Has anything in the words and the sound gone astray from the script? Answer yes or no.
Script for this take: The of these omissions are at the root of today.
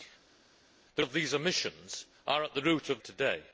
no